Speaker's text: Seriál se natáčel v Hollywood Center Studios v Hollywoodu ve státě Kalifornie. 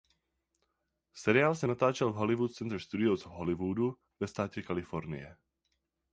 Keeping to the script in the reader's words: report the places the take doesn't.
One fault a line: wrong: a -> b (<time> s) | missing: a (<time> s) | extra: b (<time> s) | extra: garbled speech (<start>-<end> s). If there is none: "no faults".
no faults